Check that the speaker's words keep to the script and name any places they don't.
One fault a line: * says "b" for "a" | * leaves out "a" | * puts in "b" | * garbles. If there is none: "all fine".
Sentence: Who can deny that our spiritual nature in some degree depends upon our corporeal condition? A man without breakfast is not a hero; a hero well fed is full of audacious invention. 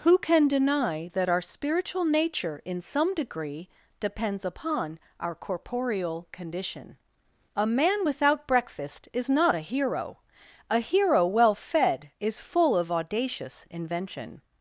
all fine